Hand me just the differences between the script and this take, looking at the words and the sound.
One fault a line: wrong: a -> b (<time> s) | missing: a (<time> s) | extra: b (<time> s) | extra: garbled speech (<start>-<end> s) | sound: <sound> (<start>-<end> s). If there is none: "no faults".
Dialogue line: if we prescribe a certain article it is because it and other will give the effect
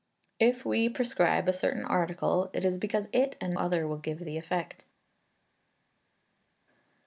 no faults